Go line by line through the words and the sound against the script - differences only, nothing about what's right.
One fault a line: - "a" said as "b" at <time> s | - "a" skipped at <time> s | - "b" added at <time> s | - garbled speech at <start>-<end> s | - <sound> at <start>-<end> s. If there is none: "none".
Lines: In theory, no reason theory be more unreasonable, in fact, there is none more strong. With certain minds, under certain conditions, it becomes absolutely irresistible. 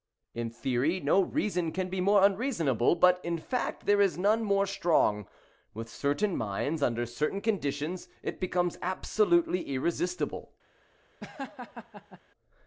- "theory" said as "can" at 1.7 s
- "but" added at 3.0 s
- laugh at 11.2-12.2 s